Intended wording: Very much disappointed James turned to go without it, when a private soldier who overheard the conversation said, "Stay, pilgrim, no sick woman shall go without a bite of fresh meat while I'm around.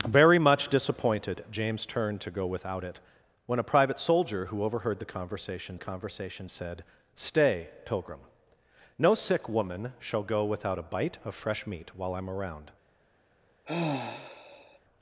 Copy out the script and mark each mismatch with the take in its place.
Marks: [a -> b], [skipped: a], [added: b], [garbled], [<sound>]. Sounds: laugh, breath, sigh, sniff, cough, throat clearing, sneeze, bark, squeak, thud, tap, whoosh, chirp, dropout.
Very much disappointed James turned to go without it, when a private soldier who overheard the conversation [added: conversation] said, "Stay, pilgrim, no sick woman shall go without a bite of fresh meat while I'm around. [sigh]